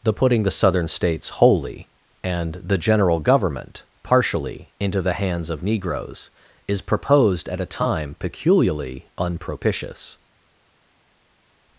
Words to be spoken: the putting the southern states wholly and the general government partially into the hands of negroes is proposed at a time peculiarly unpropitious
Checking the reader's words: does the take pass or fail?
pass